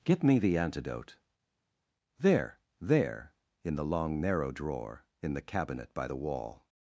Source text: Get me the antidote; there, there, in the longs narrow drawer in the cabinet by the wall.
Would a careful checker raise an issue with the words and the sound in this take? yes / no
yes